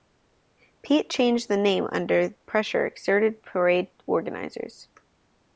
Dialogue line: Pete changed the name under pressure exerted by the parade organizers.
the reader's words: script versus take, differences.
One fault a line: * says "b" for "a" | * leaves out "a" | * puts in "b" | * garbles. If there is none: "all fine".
* leaves out "by the"